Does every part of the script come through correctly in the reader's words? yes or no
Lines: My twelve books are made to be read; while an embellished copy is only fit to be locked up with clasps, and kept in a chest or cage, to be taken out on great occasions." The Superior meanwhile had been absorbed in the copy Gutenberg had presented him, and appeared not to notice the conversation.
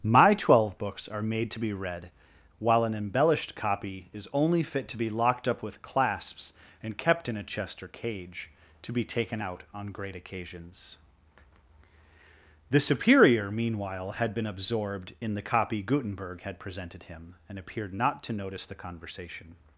yes